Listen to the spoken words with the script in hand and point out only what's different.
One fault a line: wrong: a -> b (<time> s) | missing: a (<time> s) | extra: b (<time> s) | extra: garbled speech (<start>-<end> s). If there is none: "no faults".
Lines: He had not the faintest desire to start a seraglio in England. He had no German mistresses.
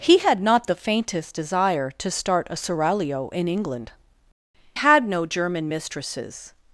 missing: He (3.9 s)